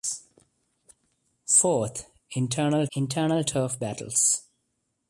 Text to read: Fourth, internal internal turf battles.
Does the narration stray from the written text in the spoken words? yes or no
no